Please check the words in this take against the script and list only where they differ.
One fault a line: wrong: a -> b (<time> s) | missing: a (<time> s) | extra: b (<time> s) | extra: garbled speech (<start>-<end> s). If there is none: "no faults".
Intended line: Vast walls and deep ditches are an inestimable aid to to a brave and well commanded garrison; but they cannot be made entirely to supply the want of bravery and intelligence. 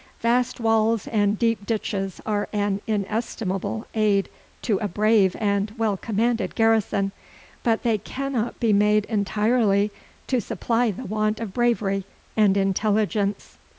missing: to (4.8 s)